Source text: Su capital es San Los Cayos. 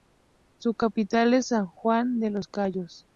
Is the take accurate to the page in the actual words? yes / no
no